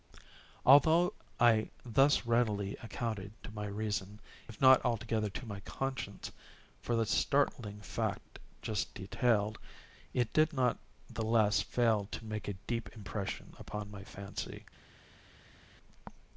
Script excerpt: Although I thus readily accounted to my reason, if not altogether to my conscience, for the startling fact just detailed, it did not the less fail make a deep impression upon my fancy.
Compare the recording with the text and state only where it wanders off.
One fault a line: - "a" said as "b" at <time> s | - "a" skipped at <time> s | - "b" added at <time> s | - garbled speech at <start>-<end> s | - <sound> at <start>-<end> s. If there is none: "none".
- "to" added at 12.1 s